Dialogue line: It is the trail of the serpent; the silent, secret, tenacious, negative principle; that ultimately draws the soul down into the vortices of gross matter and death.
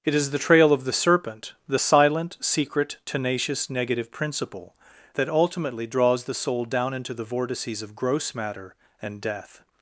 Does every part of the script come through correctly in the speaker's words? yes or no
yes